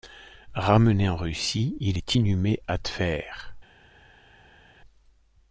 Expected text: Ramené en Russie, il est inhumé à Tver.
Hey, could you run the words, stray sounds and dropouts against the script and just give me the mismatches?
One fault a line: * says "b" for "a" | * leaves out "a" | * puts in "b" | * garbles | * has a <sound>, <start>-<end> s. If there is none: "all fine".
all fine